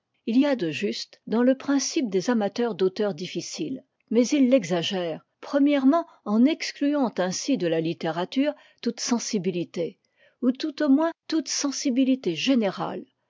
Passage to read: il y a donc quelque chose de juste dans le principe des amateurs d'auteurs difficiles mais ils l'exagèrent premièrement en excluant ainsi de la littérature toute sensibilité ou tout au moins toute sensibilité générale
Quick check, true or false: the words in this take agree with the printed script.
false